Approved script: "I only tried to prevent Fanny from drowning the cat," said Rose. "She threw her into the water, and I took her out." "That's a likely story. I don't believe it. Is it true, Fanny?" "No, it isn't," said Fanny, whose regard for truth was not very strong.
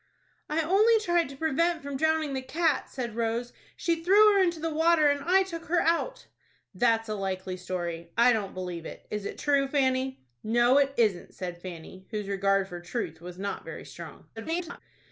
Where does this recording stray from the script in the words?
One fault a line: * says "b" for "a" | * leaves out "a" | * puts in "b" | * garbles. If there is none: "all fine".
* leaves out "Fanny"
* garbles